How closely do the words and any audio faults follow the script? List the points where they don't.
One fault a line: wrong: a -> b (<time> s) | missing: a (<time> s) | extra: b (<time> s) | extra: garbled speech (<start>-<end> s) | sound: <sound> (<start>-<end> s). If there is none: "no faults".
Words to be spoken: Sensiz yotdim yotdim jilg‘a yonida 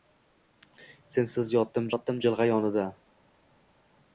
no faults